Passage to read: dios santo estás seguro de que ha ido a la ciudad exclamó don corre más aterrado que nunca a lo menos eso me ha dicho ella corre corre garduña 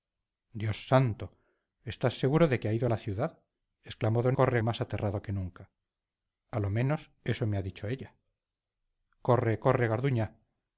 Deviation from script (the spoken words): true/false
false